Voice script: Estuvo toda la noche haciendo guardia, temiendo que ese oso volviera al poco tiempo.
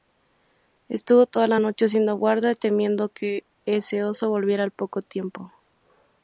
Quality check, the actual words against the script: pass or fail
pass